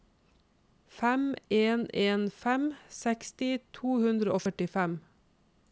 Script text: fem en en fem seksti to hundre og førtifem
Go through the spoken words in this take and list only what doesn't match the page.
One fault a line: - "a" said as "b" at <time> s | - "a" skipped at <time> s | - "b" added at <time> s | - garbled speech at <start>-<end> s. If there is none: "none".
none